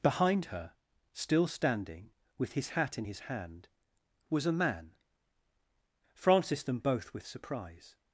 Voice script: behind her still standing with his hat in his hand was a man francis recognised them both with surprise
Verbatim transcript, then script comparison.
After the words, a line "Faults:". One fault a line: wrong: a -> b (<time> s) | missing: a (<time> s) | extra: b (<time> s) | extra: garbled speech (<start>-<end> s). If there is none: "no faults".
behind her still standing with his hat in his hand was a man francis them both with surprise
Faults:
missing: recognised (6.6 s)